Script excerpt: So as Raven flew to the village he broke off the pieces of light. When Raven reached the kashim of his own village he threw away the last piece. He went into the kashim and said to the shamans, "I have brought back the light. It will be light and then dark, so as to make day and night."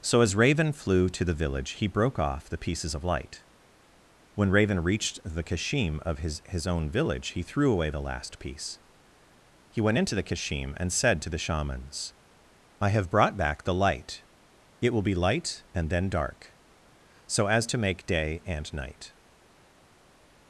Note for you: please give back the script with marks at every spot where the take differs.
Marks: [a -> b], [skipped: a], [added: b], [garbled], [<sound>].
So as Raven flew to the village he broke off the pieces of light. When Raven reached the kashim of his [added: his] own village he threw away the last piece. He went into the kashim and said to the shamans, "I have brought back the light. It will be light and then dark, so as to make day and night."